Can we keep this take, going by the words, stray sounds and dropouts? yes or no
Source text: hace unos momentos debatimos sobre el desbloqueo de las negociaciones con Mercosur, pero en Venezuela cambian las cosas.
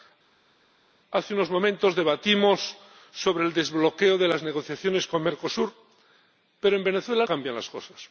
yes